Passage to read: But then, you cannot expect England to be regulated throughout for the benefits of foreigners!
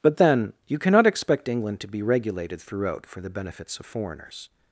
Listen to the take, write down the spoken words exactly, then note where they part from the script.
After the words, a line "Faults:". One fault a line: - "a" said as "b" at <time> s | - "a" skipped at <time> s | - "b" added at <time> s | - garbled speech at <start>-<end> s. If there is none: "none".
But then, you cannot expect England to be regulated throughout for the benefits of foreigners!
Faults:
none